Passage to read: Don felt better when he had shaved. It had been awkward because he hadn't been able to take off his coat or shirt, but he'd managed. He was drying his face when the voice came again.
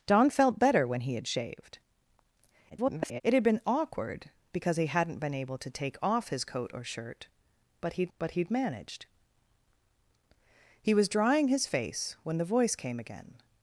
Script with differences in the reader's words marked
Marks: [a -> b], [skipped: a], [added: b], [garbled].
Don felt better when he had shaved. [garbled] It had been awkward because he hadn't been able to take off his coat or shirt, but he'd [added: but he'd] managed. He was drying his face when the voice came again.